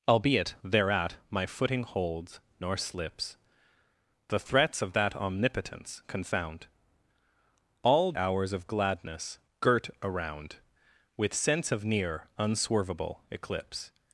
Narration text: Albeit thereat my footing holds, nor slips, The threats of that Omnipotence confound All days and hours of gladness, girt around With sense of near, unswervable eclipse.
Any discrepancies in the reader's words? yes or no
yes